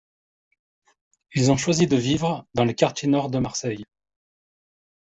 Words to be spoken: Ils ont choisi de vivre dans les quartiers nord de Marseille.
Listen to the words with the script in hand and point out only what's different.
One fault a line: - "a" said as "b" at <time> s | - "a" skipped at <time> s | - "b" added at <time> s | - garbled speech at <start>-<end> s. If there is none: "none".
none